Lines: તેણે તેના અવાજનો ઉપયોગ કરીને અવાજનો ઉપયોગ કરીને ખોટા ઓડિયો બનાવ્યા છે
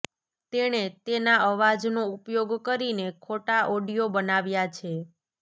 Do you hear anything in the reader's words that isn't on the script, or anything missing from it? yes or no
yes